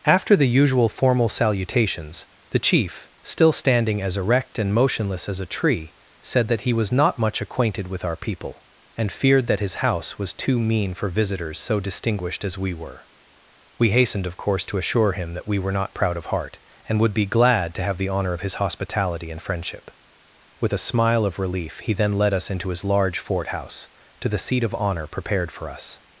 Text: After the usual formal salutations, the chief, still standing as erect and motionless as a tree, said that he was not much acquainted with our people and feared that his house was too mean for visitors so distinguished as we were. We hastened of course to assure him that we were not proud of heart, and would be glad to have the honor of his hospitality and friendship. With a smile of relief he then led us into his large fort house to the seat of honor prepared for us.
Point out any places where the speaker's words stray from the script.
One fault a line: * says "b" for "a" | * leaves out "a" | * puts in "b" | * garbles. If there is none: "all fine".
all fine